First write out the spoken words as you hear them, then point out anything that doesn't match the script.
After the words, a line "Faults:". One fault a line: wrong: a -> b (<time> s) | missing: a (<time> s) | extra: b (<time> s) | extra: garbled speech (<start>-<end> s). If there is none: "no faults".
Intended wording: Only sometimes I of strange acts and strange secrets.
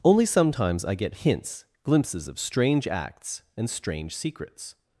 Only sometimes I get hints, glimpses of strange acts and strange secrets.
Faults:
extra: get hints glimpses (0.9 s)